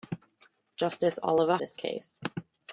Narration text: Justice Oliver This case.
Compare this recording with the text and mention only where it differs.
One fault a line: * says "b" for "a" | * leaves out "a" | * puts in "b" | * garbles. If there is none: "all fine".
all fine